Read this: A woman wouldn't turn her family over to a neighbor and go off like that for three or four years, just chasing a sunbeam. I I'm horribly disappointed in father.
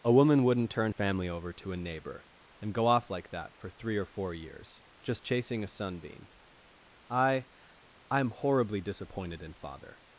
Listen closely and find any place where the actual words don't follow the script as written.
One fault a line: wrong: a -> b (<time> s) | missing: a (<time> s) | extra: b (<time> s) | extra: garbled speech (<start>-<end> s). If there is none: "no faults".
missing: her (0.9 s)